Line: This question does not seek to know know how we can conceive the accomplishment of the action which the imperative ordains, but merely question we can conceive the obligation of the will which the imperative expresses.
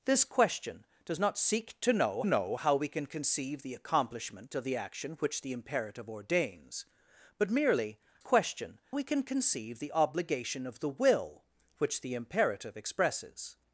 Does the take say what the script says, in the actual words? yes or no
yes